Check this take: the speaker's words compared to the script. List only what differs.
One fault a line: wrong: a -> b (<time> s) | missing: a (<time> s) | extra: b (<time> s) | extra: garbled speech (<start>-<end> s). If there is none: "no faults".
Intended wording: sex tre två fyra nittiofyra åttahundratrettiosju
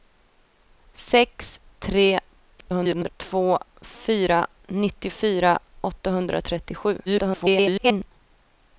extra: garbled speech (2.6-3.1 s)
extra: garbled speech (7.1-8.1 s)